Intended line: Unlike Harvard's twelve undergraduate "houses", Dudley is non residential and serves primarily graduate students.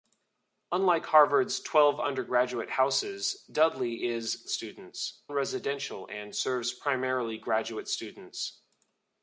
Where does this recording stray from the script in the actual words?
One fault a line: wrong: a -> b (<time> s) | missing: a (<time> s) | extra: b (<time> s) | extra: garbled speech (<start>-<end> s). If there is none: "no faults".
wrong: non -> students (4.5 s)